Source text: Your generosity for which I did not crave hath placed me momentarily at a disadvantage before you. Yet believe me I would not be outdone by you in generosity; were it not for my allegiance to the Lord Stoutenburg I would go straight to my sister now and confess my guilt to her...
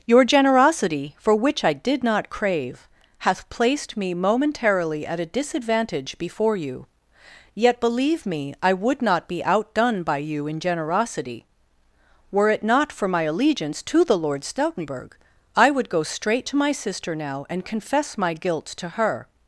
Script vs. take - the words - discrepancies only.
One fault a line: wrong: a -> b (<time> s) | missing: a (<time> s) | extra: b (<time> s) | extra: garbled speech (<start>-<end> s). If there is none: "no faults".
no faults